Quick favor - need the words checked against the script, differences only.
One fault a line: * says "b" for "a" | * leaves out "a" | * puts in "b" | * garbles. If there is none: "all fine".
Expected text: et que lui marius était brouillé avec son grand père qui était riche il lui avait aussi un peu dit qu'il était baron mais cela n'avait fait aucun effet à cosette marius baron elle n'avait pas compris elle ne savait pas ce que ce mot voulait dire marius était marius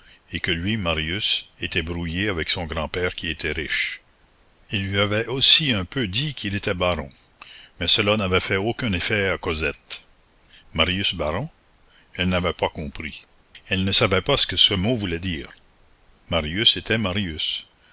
all fine